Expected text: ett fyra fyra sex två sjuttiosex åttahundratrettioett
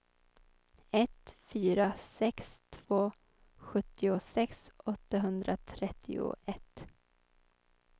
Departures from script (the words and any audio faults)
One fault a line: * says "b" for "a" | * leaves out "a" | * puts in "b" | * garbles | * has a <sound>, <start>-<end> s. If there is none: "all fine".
* leaves out "fyra"